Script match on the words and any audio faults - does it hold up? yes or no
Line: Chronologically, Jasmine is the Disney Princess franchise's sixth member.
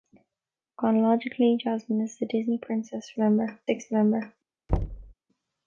no